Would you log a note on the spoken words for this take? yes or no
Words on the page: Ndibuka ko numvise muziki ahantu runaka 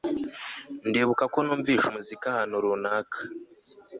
no